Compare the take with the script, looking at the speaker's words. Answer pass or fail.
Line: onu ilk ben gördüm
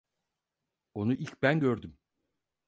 pass